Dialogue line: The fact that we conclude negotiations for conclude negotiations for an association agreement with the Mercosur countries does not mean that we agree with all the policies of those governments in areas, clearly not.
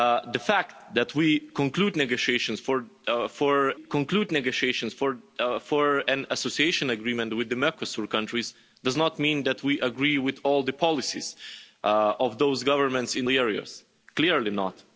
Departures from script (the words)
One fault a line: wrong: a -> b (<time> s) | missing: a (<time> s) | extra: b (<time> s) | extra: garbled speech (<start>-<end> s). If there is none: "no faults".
no faults